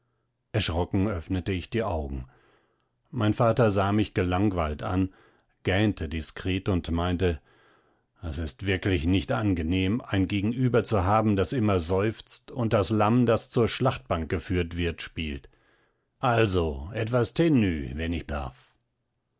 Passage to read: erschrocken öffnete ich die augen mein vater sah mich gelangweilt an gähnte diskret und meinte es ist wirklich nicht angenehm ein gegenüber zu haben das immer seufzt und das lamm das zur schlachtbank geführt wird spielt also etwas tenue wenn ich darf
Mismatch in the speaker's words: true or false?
false